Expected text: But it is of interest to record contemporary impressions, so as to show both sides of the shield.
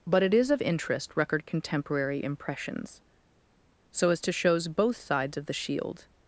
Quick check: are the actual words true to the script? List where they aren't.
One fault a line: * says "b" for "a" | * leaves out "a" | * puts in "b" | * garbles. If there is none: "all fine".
* leaves out "to"
* says "shows" for "show"